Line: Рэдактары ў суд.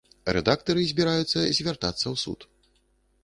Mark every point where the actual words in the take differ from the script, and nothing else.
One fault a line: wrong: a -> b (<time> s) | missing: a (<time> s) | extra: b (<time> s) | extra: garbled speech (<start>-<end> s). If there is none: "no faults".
extra: збіраюцца звяртацца (0.9 s)